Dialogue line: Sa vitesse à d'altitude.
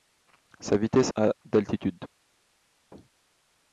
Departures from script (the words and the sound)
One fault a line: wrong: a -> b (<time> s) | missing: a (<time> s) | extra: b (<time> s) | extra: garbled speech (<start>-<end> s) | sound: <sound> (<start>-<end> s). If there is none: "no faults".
no faults